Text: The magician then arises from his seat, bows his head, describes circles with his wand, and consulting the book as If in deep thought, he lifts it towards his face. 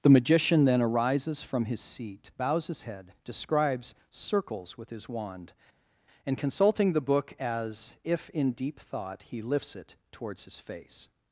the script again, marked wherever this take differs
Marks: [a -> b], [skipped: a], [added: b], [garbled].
The magician then arises from his seat, bows his head, describes circles with his wand, and consulting the book as If in deep thought, he lifts it towards his face.